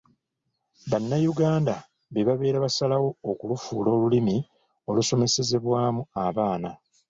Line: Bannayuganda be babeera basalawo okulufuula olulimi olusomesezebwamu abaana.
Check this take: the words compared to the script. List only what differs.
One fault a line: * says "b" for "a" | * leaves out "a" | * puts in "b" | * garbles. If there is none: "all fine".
all fine